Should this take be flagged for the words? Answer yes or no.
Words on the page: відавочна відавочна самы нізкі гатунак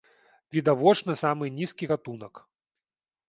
yes